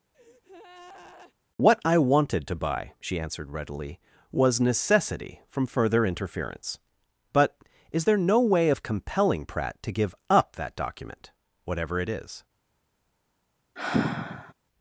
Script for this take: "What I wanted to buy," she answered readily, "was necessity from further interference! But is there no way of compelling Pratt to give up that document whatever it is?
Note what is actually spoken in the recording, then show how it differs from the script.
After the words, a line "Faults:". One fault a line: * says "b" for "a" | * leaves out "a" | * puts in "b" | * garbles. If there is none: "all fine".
"What I wanted to buy," she answered readily, "was necessity from further interference! But is there no way of compelling Pratt to give up that document whatever it is?
Faults:
all fine